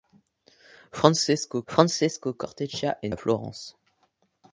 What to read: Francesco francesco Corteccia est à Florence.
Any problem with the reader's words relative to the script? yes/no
no